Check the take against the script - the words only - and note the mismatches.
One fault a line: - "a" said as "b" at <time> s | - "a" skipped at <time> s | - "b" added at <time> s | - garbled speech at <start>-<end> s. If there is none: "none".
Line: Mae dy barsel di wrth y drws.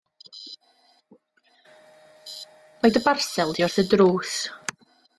none